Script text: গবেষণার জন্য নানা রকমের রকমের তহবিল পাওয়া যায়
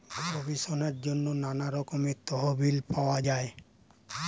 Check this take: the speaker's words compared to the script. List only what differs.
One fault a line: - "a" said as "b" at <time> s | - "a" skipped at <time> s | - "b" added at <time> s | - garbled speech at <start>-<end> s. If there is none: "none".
- "রকমের" skipped at 2.2 s